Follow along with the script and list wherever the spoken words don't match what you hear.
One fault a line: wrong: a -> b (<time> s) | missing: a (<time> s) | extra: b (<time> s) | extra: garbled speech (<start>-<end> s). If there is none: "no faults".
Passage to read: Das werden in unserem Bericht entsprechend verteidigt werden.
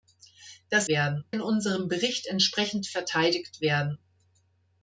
no faults